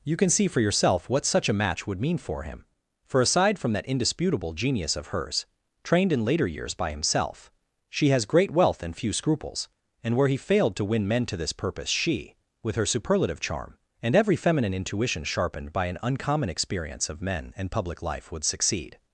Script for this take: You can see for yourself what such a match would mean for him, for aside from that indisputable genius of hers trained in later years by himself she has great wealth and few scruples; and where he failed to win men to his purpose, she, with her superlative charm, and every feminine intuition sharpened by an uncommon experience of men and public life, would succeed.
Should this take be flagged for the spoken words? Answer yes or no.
yes